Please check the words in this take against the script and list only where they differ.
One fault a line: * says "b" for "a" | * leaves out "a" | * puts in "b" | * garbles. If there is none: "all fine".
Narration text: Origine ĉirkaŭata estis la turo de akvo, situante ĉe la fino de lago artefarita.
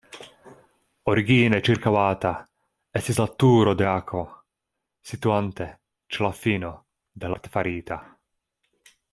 * leaves out "lago"